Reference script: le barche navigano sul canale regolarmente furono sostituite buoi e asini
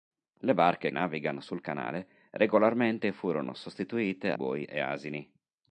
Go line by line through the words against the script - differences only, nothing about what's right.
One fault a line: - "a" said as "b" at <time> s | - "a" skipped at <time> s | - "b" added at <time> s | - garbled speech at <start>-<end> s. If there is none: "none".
none